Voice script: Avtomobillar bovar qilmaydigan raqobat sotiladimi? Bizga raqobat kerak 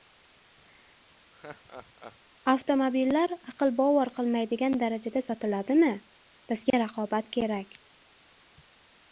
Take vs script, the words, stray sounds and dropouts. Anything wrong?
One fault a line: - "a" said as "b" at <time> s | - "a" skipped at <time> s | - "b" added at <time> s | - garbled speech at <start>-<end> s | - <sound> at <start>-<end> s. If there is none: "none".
- laugh at 1.3-2.2 s
- "aql" added at 3.5 s
- "raqobat" said as "darajada" at 4.8 s
- dropout at 6.7-6.7 s